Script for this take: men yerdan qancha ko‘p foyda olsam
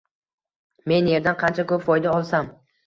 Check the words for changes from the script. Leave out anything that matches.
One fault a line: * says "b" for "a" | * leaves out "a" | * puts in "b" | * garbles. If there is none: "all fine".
all fine